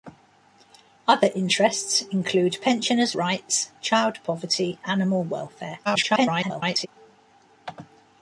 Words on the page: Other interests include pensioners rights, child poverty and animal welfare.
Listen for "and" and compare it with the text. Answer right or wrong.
wrong